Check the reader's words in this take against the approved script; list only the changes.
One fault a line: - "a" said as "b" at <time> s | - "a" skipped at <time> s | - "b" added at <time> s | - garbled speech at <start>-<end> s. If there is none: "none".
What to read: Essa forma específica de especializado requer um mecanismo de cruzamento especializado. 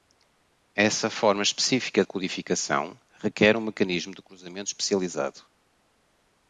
- "especializado" said as "codificação" at 2.0 s